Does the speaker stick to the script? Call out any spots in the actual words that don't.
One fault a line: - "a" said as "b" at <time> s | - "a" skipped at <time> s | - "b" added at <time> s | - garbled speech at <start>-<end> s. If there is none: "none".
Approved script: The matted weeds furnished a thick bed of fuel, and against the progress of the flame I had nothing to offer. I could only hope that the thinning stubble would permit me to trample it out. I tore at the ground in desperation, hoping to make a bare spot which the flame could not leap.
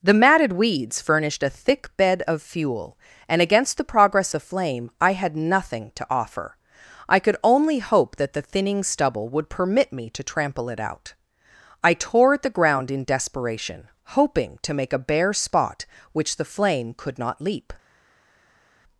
- "of" skipped at 4.3 s